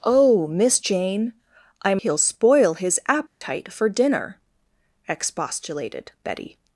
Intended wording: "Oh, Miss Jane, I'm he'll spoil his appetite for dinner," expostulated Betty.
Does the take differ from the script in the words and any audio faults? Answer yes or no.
yes